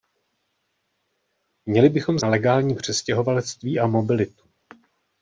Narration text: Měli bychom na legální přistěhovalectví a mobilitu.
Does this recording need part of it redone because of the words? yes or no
no